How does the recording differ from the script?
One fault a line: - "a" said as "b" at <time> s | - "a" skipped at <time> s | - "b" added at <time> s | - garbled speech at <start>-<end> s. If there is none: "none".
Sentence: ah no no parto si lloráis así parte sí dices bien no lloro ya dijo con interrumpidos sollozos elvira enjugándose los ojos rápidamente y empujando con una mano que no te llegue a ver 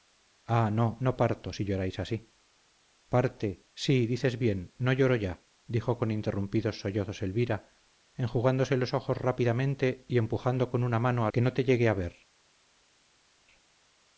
none